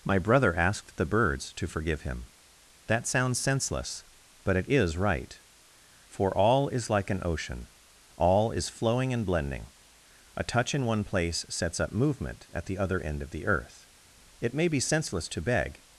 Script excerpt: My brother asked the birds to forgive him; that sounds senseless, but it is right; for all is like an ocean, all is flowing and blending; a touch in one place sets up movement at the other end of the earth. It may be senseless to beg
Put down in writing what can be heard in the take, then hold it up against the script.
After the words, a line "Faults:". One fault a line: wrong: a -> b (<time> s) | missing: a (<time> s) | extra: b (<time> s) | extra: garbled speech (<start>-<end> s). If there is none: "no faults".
My brother asked the birds to forgive him; that sounds senseless, but it is right; for all is like an ocean, all is flowing and blending; a touch in one place sets up movement at the other end of the earth. It may be senseless to beg
Faults:
no faults